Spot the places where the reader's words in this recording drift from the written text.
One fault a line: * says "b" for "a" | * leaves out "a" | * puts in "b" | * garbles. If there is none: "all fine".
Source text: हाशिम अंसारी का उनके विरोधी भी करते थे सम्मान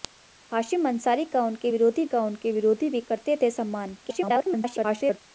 * puts in "का उनके विरोधी"
* garbles